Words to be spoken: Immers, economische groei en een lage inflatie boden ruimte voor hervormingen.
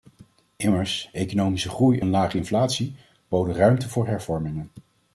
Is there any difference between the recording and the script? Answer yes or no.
yes